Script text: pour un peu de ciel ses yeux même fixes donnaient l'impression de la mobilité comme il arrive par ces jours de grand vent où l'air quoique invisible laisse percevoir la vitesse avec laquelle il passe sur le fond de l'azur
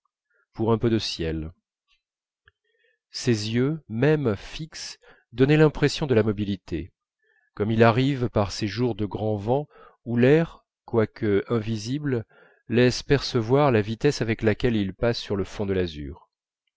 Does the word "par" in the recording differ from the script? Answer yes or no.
no